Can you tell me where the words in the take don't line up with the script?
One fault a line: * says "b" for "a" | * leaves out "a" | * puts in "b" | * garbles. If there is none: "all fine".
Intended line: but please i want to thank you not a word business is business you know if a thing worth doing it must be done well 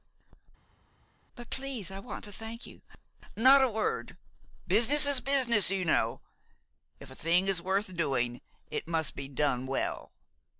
* puts in "is"